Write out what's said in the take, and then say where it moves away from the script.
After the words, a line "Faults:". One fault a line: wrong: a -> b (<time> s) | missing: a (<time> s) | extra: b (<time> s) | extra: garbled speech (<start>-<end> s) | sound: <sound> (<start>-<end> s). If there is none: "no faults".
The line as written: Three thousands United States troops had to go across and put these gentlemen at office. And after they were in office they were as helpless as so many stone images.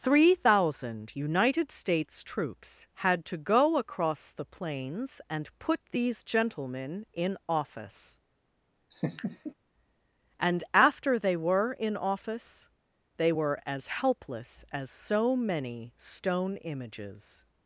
Three thousand United States troops had to go across the plains and put these gentlemen in office. And after they were in office they were as helpless as so many stone images.
Faults:
wrong: thousands -> thousand (0.3 s)
extra: the plains (4.3 s)
wrong: at -> in (7.1 s)
sound: laugh (8.9-9.5 s)